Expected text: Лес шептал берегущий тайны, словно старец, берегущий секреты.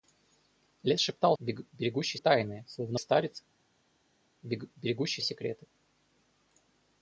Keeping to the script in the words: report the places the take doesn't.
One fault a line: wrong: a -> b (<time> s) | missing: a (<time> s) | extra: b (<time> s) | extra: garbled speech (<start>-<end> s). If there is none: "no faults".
no faults